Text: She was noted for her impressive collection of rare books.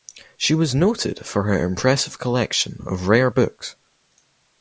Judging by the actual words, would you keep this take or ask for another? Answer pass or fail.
pass